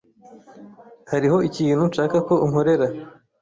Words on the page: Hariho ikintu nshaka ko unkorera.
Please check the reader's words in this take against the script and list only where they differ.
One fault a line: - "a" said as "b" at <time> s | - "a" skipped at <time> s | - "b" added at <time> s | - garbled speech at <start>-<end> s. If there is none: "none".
none